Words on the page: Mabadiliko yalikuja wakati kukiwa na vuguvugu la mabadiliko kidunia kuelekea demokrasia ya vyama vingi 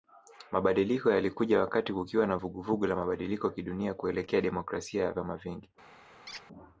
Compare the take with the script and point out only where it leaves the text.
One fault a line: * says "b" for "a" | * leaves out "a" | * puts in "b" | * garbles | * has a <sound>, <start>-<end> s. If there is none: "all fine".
* has a squeak, 6.3-6.4 s